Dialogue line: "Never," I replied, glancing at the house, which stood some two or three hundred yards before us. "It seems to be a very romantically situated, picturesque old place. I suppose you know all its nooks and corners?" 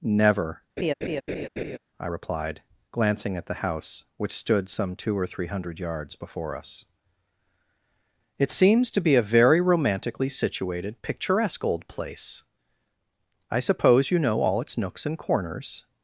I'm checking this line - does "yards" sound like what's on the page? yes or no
yes